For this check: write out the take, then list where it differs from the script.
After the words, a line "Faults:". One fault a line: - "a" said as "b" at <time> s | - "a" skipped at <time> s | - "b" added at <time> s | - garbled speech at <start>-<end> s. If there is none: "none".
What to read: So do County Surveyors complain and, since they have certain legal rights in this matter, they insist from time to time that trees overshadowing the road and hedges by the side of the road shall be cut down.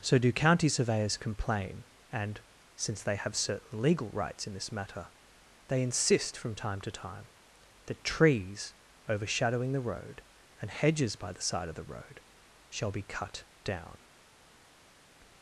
So do County Surveyors complain and, since they have certain legal rights in this matter, they insist from time to time that trees overshadowing the road and hedges by the side of the road shall be cut down.
Faults:
none